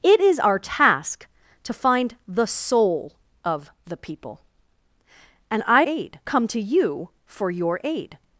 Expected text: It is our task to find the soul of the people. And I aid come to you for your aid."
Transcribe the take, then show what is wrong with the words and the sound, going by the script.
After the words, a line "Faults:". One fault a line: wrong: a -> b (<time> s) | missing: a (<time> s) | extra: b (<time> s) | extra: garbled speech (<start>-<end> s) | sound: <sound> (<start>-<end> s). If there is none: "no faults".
It is our task to find the soul of the people. And I aid come to you for your aid."
Faults:
no faults